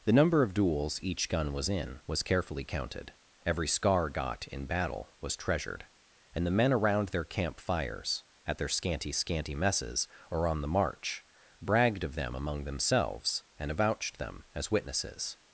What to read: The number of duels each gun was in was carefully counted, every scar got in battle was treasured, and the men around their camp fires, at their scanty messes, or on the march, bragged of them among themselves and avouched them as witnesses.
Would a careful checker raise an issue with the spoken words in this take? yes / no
yes